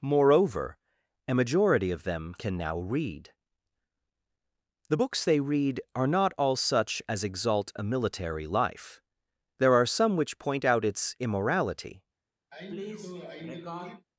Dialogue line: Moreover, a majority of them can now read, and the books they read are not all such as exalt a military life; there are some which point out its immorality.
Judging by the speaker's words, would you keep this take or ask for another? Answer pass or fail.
fail